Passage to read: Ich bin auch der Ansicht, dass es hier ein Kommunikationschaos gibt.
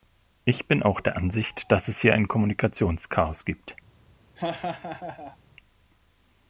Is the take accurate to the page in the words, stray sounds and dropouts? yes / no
no